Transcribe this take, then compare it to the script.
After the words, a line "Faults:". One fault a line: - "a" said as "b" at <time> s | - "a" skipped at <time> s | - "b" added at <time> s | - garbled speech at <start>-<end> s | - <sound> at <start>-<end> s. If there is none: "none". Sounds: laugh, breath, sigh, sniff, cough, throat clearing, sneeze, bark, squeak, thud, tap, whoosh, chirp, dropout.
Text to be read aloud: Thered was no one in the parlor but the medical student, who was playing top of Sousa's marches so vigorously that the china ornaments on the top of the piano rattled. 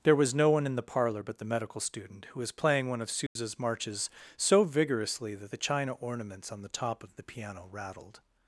There was no one in the parlor but the medical student, who was playing one of Sousa's marches so vigorously that the china ornaments on the top of the piano rattled.
Faults:
- "Thered" said as "There" at 0.0 s
- "top" said as "one" at 2.9 s
- dropout at 3.3-3.4 s